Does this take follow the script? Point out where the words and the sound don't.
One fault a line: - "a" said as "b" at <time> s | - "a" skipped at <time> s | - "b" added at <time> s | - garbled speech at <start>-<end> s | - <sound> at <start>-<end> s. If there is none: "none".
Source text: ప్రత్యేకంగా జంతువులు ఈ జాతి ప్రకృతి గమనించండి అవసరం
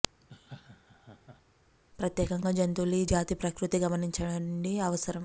- laugh at 0.2-1.4 s